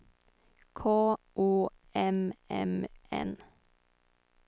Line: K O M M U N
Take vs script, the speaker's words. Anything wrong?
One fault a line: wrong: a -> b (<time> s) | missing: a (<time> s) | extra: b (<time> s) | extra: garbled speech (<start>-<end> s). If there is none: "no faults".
missing: U (2.9 s)